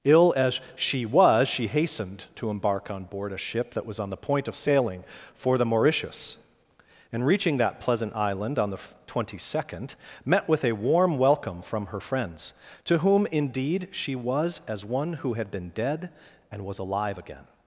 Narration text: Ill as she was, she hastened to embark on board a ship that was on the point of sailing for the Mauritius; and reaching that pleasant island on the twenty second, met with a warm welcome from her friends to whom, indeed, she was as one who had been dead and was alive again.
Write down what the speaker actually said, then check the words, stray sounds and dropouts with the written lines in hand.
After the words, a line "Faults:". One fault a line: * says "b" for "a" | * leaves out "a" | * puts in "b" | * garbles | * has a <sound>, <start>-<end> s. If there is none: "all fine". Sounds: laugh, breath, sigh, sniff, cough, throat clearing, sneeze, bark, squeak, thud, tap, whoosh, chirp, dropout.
Ill as she was, she hastened to embark on board a ship that was on the point of sailing for the Mauritius; and reaching that pleasant island on the twenty second, met with a warm welcome from her friends to whom, indeed, she was as one who had been dead and was alive again.
Faults:
all fine